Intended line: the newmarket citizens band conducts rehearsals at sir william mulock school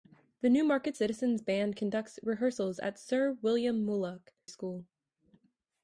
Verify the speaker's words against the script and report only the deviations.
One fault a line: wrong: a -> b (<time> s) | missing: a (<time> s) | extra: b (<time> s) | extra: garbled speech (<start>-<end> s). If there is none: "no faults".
no faults